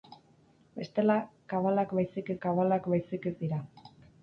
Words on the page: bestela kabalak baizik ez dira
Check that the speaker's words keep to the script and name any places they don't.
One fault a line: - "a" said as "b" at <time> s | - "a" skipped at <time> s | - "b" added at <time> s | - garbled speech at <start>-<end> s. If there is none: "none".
- "kabalak baizik" added at 2.5 s